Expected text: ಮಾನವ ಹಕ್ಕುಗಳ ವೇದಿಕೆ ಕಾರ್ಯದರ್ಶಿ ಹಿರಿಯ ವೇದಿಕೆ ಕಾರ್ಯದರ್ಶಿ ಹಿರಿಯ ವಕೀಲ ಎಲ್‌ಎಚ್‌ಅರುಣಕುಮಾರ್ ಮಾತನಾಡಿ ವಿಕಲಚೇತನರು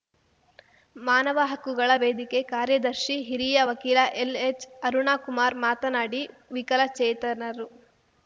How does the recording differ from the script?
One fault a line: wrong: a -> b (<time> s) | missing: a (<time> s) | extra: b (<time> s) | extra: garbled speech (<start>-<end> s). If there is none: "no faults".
missing: ವೇದಿಕೆ ಕಾರ್ಯದರ್ಶಿ ಹಿರಿಯ (3.6 s)